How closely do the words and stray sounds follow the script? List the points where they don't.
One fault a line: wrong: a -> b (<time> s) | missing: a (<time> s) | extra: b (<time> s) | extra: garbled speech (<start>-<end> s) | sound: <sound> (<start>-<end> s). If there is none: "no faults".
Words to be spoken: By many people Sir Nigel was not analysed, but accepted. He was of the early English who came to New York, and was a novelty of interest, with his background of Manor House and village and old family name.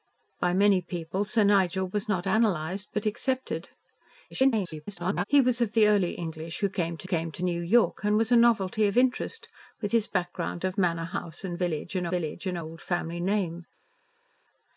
extra: garbled speech (4.3-5.2 s)
extra: came to (7.0 s)
extra: village and (12.1 s)